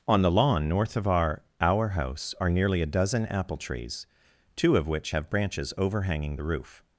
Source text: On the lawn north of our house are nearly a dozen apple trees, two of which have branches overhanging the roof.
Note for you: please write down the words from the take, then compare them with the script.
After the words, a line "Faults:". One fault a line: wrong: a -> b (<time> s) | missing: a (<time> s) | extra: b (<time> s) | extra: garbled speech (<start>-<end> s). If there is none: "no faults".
On the lawn north of our our house are nearly a dozen apple trees, two of which have branches overhanging the roof.
Faults:
extra: our (1.6 s)